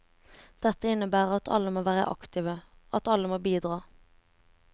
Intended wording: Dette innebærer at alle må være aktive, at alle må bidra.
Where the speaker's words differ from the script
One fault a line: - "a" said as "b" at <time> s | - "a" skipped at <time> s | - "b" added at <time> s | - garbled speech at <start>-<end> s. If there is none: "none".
none